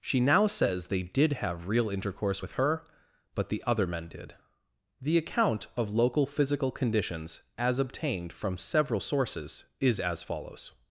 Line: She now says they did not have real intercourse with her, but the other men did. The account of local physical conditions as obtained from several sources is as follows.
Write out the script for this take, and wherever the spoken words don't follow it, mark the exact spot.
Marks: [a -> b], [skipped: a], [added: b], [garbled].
She now says they did [skipped: not] have real intercourse with her, but the other men did. The account of local physical conditions as obtained from several sources is as follows.